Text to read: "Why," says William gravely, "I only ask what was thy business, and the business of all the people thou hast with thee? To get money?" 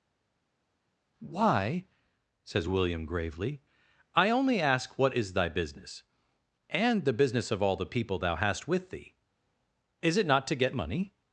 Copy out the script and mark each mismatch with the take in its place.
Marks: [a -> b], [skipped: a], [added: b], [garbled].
"Why," says William gravely, "I only ask what [was -> is] thy business, and the business of all the people thou hast with thee? [added: Is it not] To get money?"